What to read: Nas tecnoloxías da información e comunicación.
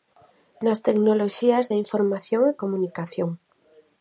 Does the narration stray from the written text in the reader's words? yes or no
no